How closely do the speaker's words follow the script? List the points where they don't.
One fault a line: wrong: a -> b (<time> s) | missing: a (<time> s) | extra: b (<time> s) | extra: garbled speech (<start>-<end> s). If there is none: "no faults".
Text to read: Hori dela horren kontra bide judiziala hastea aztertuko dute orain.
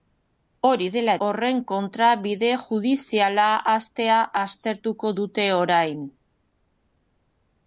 no faults